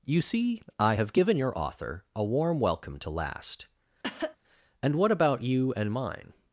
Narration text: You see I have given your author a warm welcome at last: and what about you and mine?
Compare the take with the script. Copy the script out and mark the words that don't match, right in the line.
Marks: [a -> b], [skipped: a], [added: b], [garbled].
You see I have given your author a warm welcome [at -> to] last: and what about you and mine?